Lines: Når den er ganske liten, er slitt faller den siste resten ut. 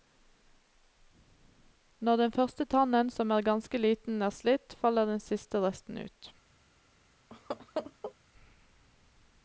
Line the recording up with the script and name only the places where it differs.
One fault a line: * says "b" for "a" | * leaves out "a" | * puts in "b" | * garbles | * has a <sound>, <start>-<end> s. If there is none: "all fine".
* puts in "første tannen som"
* has a laugh, 7.3-8.1 s